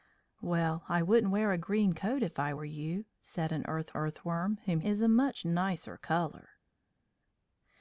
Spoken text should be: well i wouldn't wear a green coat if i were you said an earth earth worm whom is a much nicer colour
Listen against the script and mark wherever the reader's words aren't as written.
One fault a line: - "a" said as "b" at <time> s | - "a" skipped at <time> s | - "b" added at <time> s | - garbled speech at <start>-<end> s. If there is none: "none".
none